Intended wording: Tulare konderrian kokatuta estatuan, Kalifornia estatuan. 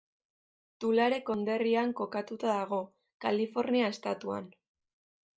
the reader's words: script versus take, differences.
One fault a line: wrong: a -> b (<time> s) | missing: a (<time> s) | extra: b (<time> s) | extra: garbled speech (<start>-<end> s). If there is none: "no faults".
wrong: estatuan -> dago (2.6 s)